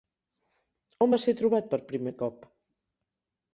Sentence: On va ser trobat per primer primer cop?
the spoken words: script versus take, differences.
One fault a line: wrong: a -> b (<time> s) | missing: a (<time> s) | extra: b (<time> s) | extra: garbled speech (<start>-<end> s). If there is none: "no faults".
missing: primer (2.1 s)